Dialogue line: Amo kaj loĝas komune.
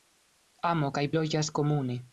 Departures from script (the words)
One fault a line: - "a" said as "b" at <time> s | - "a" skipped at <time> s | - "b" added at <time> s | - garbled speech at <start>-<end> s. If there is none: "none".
none